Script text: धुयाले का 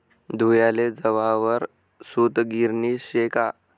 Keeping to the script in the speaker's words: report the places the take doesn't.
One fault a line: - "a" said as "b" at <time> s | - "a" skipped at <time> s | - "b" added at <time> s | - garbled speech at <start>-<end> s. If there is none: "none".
- "जवाहर सूतगिरणी शे" added at 0.9 s